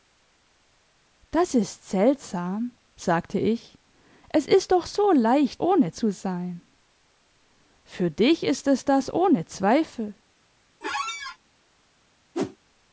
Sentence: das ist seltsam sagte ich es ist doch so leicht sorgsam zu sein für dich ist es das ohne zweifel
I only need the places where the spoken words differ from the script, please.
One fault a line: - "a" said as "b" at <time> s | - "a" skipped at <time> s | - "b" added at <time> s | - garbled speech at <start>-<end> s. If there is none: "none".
- "sorgsam" said as "ohne" at 5.6 s